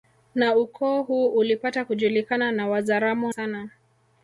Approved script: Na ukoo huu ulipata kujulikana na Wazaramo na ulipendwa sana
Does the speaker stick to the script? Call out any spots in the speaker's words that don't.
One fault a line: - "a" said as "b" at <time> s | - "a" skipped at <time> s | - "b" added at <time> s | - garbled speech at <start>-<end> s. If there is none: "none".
- "na ulipendwa" skipped at 3.3 s